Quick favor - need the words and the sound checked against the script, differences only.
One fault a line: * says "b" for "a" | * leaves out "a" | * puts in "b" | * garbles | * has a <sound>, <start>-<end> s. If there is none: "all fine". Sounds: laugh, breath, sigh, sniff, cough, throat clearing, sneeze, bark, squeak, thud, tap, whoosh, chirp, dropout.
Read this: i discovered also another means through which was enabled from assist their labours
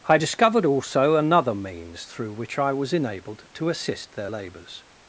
* puts in "i"
* says "to" for "from"